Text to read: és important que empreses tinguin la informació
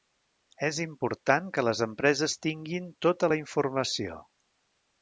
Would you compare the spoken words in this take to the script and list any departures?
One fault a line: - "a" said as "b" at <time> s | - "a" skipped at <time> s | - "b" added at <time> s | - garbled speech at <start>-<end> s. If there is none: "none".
- "les" added at 1.7 s
- "tota" added at 3.1 s